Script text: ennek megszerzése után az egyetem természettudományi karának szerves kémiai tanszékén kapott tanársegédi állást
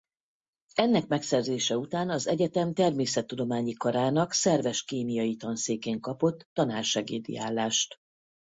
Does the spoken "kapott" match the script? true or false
true